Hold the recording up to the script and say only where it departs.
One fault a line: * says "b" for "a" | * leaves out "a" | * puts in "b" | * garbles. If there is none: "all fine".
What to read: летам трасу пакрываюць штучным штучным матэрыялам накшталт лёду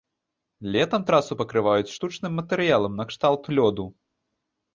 * leaves out "штучным"